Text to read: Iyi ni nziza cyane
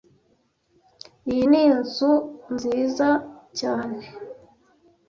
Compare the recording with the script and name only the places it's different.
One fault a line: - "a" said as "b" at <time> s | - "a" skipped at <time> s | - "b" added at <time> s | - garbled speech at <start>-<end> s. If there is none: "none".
- "inzu" added at 1.7 s